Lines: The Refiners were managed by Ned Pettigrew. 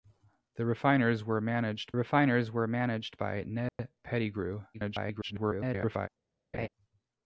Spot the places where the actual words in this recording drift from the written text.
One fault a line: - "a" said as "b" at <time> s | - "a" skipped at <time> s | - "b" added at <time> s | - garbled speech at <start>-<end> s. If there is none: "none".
- "Refiners were managed" added at 1.9 s
- garbled speech at 4.7-6.1 s